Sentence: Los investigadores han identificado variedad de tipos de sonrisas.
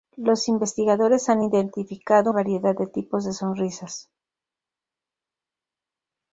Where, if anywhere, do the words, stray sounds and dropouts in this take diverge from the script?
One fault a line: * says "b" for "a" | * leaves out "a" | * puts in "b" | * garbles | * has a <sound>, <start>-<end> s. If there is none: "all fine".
all fine